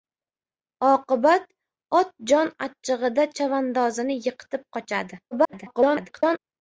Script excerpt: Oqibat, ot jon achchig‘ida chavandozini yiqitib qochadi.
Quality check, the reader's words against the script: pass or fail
fail